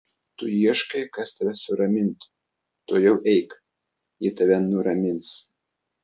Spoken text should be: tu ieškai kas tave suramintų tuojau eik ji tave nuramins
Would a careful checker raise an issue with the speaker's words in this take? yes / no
no